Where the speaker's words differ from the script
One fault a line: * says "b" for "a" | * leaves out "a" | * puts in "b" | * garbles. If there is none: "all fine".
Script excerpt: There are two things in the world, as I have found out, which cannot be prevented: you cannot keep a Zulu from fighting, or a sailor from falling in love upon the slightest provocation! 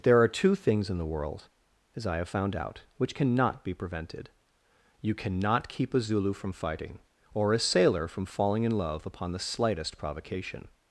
all fine